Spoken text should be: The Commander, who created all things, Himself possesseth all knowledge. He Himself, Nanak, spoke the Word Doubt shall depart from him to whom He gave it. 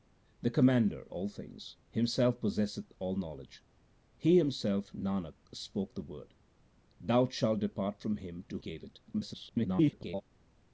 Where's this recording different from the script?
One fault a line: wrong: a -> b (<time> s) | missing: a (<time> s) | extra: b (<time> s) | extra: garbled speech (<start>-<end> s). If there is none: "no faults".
missing: who created (1.1 s)
missing: whom He (8.6 s)
extra: garbled speech (9.1-10.2 s)